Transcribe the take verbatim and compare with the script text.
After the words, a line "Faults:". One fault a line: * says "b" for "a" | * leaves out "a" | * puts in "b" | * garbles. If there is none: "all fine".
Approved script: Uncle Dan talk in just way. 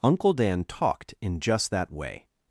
Uncle Dan talked in just that way.
Faults:
* says "talked" for "talk"
* puts in "that"